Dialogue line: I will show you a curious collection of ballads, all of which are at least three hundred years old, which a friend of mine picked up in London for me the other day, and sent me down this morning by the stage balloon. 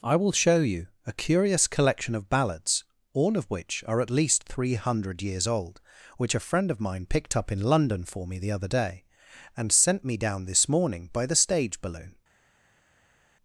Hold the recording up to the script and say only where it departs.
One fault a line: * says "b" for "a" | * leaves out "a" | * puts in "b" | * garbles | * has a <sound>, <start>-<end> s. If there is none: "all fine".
all fine